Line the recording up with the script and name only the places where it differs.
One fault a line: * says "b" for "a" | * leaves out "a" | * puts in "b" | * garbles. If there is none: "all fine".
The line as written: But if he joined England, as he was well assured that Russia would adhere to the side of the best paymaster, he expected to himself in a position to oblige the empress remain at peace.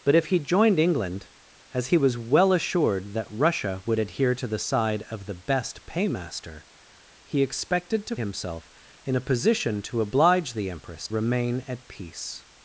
all fine